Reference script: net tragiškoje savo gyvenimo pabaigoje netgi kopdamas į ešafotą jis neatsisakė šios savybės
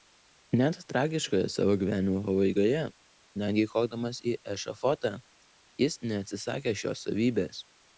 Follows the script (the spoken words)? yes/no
yes